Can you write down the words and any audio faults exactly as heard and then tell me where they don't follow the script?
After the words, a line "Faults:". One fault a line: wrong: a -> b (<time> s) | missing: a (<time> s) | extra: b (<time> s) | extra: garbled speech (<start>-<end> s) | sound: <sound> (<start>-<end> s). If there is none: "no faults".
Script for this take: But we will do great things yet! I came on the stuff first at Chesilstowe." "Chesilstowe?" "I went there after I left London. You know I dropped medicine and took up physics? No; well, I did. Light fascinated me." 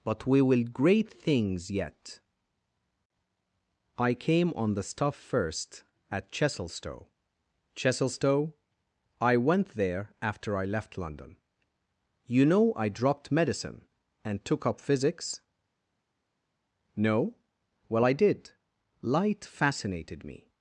But we will great things yet! I came on the stuff first at Chesilstowe." "Chesilstowe?" "I went there after I left London. You know I dropped medicine and took up physics? No; well, I did. Light fascinated me."
Faults:
missing: do (0.6 s)